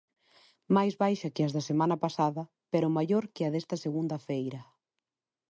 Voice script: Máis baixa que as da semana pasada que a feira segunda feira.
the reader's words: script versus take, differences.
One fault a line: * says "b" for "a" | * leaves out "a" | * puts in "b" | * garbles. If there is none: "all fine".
* puts in "pero maior"
* says "desta" for "feira"